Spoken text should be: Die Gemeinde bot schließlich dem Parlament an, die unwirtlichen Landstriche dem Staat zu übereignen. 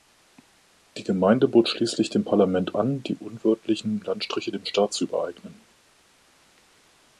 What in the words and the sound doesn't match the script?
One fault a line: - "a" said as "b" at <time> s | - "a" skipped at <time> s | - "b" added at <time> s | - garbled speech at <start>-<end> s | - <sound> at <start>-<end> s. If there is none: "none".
none